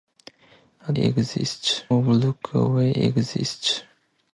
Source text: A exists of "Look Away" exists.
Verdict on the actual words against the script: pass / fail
pass